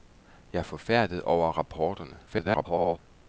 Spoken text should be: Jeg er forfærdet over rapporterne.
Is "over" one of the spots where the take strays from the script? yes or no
no